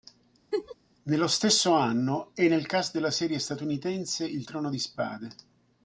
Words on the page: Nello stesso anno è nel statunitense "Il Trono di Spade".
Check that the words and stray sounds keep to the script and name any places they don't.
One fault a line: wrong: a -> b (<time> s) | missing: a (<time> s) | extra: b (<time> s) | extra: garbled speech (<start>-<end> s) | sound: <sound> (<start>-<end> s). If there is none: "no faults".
sound: laugh (0.5-0.8 s)
extra: cast della serie (2.7 s)